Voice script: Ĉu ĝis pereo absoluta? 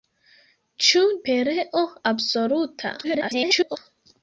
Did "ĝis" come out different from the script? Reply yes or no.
yes